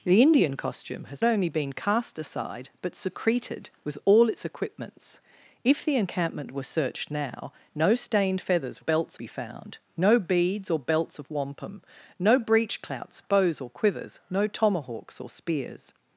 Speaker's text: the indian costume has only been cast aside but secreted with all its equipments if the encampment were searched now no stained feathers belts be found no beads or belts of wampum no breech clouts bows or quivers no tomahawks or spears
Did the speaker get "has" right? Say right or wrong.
right